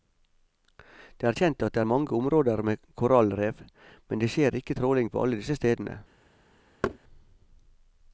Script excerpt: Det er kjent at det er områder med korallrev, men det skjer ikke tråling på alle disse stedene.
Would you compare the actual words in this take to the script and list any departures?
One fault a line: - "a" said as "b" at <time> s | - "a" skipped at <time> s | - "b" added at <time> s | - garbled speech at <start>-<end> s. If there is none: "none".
- "mange" added at 1.9 s